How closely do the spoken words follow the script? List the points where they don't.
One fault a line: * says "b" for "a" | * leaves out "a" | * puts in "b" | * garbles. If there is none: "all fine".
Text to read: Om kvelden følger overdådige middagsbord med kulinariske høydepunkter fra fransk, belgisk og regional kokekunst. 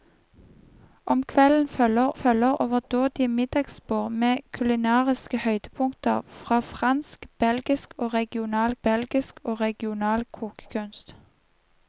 * puts in "følger"
* puts in "belgisk og regional"